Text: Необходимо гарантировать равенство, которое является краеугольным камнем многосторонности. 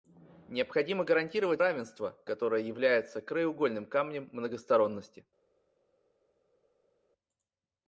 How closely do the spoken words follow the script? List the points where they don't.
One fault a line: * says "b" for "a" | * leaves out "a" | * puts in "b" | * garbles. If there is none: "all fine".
all fine